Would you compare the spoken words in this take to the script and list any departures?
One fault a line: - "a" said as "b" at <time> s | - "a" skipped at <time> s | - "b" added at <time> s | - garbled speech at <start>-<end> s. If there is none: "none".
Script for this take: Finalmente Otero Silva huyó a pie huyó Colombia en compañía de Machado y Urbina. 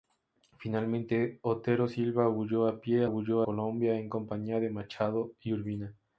none